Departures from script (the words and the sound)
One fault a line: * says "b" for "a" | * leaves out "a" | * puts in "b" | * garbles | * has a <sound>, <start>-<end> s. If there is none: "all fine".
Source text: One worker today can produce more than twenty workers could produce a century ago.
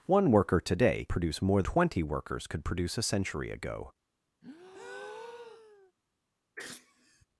* leaves out "can"
* leaves out "than"
* has a breath, 4.4-5.9 s
* has a sneeze, 6.6-7.3 s